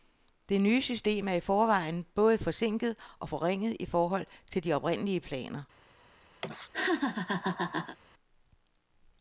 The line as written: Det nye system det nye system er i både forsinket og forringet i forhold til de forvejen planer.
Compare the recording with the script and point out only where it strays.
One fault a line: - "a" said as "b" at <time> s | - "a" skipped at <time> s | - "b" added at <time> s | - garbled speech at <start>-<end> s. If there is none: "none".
- "det nye system" skipped at 1.3 s
- "forvejen" added at 1.4 s
- "forvejen" said as "oprindelige" at 4.7 s